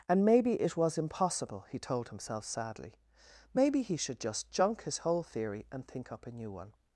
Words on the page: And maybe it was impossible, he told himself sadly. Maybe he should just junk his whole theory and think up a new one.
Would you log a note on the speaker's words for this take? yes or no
no